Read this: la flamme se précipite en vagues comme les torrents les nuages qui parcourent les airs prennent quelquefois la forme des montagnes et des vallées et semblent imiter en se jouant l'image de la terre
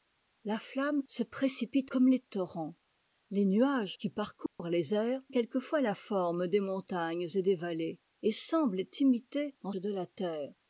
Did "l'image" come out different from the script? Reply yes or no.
yes